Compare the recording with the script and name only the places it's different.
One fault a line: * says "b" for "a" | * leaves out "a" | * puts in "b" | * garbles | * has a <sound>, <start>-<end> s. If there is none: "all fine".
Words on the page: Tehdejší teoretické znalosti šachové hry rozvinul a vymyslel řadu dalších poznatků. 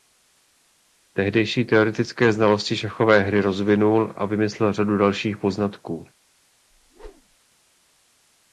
* has a whoosh, 6.7-7.4 s